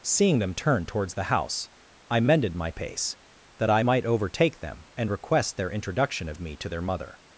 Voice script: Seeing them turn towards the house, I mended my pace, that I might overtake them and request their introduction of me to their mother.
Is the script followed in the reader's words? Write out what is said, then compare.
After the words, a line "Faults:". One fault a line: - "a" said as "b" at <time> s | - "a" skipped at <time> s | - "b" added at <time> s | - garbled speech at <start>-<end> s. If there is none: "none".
Seeing them turn towards the house, I mended my pace, that I might overtake them and request their introduction of me to their mother.
Faults:
none